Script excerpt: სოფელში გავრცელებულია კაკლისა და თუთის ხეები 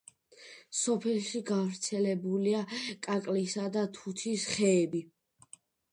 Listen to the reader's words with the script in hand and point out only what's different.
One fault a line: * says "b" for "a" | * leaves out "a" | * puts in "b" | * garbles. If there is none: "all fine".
all fine